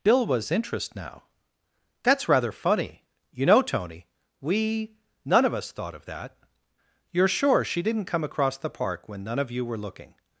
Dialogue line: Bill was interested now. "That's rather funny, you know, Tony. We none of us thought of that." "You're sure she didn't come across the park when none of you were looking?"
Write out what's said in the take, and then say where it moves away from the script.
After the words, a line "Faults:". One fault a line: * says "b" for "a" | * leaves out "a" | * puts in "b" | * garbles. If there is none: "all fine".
Bill was interest now. "That's rather funny, you know, Tony. We none of us thought of that." "You're sure she didn't come across the park when none of you were looking?"
Faults:
* says "interest" for "interested"